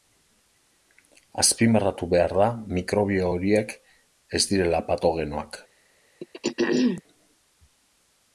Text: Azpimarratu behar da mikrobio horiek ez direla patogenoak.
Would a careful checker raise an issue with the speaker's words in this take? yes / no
no